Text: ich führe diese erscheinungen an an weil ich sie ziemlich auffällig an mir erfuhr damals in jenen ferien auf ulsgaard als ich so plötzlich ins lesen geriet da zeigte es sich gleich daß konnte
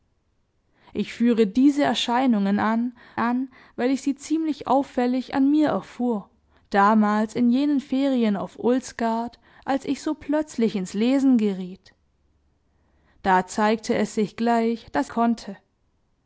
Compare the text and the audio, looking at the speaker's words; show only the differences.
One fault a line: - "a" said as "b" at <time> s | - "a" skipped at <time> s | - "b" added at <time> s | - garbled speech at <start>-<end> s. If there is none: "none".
none